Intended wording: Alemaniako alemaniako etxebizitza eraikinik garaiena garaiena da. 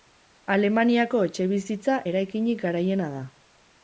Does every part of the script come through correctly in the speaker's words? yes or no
no